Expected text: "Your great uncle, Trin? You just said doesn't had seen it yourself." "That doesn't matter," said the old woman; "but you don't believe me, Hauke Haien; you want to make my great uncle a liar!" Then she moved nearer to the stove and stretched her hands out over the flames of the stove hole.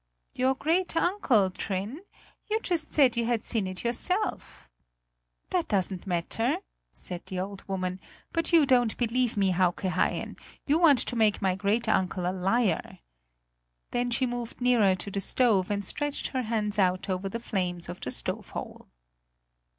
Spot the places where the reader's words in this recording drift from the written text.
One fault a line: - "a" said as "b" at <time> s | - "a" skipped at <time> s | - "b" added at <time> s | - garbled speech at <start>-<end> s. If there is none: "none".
- "doesn't" said as "you" at 3.1 s